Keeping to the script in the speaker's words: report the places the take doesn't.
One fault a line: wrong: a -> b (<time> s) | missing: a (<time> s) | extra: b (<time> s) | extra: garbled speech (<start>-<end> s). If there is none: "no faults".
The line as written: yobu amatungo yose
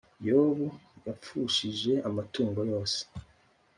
extra: yapfushije (1.1 s)